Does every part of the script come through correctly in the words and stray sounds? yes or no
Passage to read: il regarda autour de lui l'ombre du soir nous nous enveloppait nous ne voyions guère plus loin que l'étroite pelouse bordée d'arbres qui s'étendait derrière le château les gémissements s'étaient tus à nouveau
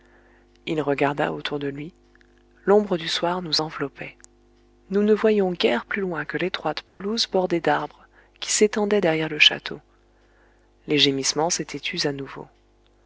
no